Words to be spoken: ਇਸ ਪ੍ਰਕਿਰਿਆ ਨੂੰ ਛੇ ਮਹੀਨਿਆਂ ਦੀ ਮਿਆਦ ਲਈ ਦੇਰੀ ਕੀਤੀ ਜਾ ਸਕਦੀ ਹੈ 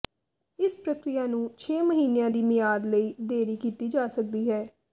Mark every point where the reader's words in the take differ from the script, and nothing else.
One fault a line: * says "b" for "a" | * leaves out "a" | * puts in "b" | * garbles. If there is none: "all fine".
all fine